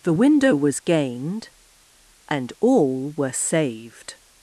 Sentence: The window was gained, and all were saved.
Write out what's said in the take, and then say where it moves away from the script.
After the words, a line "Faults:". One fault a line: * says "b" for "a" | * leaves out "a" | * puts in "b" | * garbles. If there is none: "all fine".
The window was gained, and all were saved.
Faults:
all fine